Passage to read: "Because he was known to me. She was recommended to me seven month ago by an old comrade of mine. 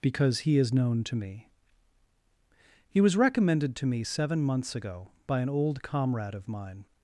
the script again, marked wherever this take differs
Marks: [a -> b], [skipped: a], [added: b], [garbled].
"Because he [was -> is] known to me. [She -> He] was recommended to me seven [month -> months] ago by an old comrade of mine.